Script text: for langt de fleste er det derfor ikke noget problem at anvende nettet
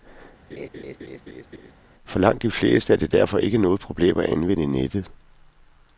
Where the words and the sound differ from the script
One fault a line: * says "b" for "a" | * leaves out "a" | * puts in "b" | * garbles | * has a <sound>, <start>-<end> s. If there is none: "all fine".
* has a laugh, 0.5-1.7 s